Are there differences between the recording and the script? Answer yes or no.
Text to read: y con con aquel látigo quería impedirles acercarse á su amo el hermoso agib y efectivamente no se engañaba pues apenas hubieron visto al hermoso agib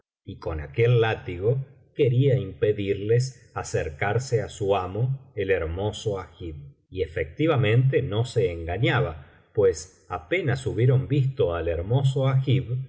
yes